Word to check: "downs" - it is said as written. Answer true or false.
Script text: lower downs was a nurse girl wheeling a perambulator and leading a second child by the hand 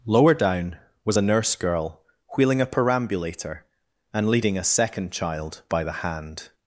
false